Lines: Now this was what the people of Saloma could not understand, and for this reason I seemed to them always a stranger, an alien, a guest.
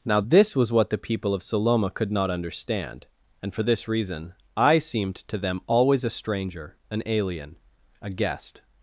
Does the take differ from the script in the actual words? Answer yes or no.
no